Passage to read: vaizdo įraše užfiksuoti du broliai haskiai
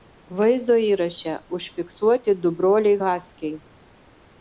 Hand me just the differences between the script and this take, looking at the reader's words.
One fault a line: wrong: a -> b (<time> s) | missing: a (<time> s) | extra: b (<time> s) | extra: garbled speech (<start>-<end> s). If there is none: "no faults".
no faults